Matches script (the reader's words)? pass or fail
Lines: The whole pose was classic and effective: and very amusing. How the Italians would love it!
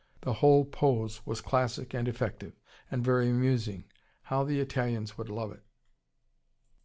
pass